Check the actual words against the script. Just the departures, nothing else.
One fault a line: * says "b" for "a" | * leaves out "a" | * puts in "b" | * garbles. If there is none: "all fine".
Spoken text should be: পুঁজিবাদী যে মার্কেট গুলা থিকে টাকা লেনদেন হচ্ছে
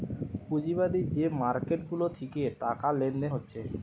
all fine